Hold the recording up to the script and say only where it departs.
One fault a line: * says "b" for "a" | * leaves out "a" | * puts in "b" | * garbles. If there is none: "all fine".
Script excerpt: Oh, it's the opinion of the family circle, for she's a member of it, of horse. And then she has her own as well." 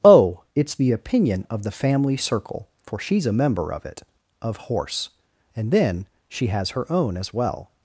all fine